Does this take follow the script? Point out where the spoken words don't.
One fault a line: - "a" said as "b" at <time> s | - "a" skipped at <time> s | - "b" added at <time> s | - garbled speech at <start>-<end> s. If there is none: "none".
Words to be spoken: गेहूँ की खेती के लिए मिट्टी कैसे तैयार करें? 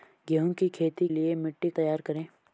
- "के" skipped at 1.1 s
- "कैसे" skipped at 1.7 s